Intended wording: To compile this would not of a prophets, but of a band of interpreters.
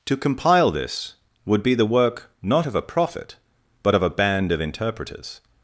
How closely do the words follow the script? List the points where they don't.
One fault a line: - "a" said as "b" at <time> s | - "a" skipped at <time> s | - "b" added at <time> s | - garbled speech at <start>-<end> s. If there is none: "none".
- "be the work" added at 1.6 s
- "prophets" said as "prophet" at 2.8 s